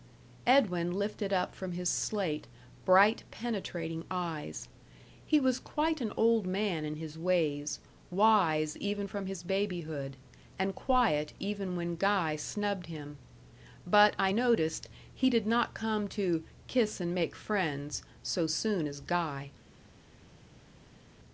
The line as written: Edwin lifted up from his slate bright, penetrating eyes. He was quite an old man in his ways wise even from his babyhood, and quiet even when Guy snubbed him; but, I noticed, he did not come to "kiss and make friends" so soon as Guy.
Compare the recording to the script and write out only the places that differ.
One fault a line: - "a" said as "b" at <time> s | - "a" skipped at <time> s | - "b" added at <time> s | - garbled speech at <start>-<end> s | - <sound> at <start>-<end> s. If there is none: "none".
none